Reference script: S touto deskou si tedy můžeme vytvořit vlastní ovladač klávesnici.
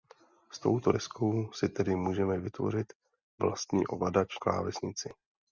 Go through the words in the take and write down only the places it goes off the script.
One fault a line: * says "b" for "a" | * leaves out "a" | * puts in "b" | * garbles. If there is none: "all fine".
all fine